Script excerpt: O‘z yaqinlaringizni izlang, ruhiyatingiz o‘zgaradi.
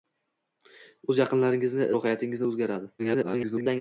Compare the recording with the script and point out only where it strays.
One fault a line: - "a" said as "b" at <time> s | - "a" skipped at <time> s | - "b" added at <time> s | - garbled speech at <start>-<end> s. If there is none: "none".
- "izlang" skipped at 1.9 s
- garbled speech at 3.0-3.8 s